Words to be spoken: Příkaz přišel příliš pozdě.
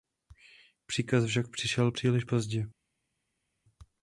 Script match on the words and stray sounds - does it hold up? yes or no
no